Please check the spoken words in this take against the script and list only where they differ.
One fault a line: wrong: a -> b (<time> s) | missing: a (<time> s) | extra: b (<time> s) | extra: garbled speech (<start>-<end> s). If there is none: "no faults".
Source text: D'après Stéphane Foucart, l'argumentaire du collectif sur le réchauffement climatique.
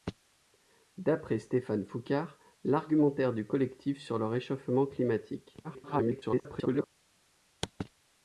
extra: garbled speech (5.6-6.9 s)